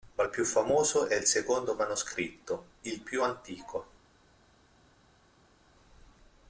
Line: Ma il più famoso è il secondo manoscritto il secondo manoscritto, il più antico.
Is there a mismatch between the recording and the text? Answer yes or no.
yes